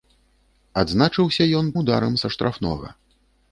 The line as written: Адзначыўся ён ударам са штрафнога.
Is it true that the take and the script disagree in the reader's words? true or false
false